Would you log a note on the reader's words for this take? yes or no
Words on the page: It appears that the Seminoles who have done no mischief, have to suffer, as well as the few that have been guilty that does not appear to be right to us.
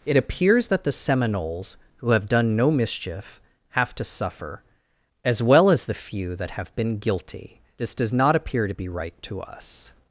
yes